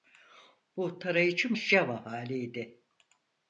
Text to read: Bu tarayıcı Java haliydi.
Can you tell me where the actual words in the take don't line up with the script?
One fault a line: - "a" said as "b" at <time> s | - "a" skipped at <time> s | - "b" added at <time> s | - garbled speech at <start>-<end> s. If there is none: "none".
none